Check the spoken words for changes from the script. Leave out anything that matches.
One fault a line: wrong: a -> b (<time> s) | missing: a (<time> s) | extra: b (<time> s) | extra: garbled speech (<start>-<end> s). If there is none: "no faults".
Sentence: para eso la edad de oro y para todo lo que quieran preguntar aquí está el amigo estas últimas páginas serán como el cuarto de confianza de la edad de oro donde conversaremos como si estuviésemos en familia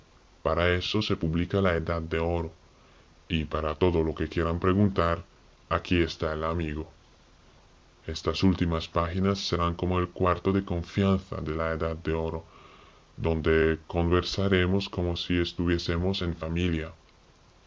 extra: se publica (1.0 s)